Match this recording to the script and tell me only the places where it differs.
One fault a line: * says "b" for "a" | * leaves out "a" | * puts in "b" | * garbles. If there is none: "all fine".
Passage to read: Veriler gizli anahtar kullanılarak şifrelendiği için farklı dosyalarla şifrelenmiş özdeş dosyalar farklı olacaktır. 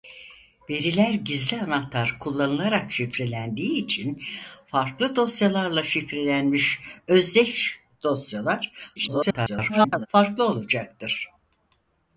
* garbles